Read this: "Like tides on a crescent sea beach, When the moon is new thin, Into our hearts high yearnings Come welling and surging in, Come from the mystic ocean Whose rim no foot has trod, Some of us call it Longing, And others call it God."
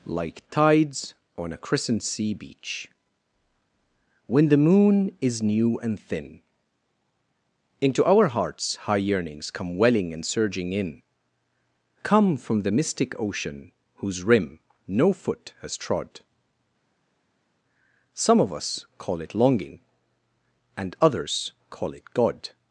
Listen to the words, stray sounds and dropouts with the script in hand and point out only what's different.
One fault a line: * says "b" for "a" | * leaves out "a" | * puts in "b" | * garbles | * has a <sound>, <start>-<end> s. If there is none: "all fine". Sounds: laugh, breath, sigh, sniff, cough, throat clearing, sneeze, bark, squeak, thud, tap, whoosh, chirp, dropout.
* puts in "and"